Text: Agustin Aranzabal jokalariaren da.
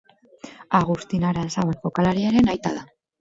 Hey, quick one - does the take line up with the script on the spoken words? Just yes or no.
no